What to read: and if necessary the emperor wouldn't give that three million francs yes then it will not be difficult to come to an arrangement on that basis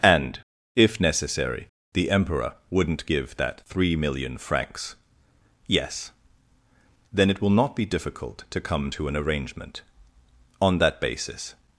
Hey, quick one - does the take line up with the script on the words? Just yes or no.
yes